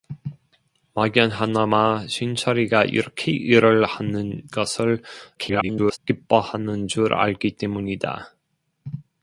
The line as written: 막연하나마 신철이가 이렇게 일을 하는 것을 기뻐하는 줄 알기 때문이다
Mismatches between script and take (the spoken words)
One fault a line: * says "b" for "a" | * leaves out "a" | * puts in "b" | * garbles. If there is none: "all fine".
* garbles